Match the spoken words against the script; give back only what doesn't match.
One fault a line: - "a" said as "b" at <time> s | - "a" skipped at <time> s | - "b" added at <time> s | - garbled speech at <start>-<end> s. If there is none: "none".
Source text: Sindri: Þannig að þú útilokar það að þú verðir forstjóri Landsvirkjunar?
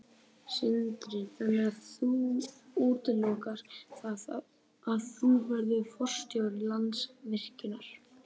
none